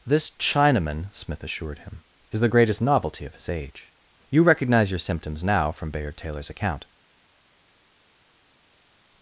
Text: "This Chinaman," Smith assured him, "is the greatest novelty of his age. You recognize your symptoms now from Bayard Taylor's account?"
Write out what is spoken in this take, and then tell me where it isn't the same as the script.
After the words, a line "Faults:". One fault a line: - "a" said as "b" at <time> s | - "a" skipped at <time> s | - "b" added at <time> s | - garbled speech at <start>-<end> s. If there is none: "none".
"This Chinaman," Smith assured him, "is the greatest novelty of his age. You recognize your symptoms now from Bayard Taylor's account?"
Faults:
none